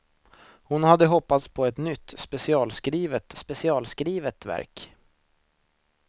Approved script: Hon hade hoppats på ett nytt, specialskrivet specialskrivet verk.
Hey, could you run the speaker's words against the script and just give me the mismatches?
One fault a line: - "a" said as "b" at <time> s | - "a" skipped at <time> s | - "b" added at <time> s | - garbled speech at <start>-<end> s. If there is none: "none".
none